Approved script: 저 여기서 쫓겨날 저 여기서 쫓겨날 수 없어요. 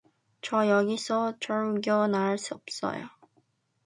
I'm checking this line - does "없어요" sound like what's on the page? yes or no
yes